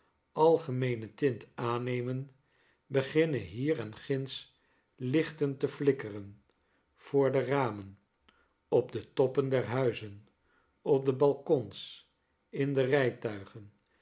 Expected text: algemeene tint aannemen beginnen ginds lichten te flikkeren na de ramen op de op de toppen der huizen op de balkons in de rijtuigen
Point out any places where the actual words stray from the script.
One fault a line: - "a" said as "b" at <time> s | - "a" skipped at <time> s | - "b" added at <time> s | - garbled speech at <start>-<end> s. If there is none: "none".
- "hier en" added at 3.4 s
- "na" said as "voor" at 6.9 s
- "op de" skipped at 9.1 s